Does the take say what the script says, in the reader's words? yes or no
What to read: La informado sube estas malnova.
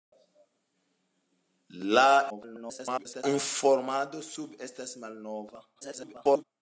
no